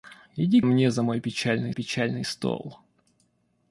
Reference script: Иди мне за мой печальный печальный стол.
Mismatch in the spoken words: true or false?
false